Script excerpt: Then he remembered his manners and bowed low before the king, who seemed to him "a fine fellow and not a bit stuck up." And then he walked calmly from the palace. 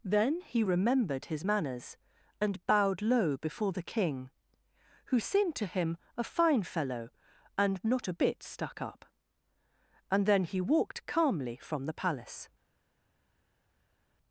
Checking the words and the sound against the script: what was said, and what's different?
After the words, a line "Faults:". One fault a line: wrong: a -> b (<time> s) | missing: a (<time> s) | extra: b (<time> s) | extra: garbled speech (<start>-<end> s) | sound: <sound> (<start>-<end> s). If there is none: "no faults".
Then he remembered his manners and bowed low before the king, who seemed to him "a fine fellow and not a bit stuck up." And then he walked calmly from the palace.
Faults:
no faults